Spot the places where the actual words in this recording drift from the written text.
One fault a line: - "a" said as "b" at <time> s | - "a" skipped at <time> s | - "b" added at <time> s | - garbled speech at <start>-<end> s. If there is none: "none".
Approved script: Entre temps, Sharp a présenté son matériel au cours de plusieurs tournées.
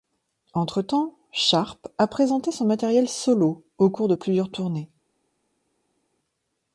- "solo" added at 3.1 s